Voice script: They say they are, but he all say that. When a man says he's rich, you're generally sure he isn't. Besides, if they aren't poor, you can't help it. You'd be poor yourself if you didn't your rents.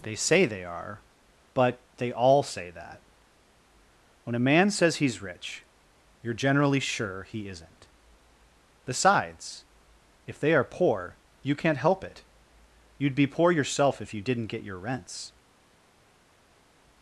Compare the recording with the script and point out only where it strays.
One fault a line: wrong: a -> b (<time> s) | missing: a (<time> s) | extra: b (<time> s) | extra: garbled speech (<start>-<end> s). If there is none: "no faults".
wrong: he -> they (2.0 s)
wrong: aren't -> are (10.5 s)
extra: get (14.5 s)